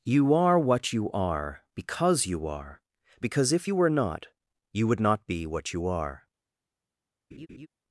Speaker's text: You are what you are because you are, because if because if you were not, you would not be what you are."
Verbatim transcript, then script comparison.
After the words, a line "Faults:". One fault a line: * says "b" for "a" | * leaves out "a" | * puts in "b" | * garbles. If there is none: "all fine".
You are what you are because you are, because if you were not, you would not be what you are."
Faults:
* leaves out "because if"